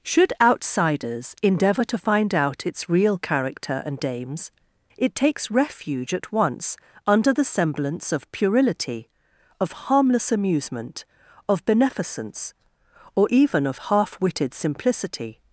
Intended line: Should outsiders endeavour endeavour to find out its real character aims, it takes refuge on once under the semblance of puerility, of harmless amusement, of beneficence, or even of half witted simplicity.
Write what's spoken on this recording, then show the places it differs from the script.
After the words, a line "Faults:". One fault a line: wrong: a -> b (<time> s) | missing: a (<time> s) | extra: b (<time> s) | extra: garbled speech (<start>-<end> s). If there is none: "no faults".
Should outsiders endeavour to find out its real character and aims, it takes refuge at once under the semblance of puerility, of harmless amusement, of beneficence, or even of half witted simplicity.
Faults:
missing: endeavour (1.8 s)
extra: and (3.8 s)
wrong: on -> at (6.1 s)